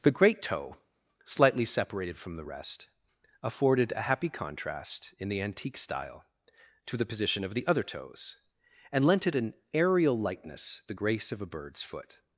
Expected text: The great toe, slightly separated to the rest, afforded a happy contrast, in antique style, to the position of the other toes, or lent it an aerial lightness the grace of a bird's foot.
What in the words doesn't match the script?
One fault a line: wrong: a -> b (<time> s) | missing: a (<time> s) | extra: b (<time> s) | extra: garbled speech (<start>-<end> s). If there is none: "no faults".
wrong: to -> from (2.2 s)
extra: the (5.3 s)
wrong: or -> and (8.9 s)